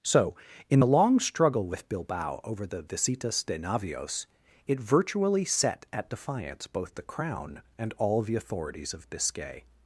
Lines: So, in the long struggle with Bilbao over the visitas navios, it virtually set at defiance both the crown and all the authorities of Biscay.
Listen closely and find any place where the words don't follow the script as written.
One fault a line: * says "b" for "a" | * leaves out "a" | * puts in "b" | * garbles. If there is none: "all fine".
* puts in "de"